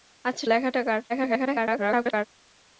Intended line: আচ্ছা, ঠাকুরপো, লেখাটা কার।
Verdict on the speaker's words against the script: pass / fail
fail